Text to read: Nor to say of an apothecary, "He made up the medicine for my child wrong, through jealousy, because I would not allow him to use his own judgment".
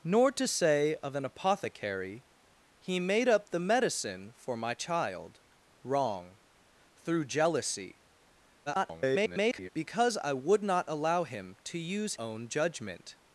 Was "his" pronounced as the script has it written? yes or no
no